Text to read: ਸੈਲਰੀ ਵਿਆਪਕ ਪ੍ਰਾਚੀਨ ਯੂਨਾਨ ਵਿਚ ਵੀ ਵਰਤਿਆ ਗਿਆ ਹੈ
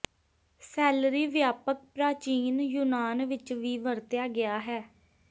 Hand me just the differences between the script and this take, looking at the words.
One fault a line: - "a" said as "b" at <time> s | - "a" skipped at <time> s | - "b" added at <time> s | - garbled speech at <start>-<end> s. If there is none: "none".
none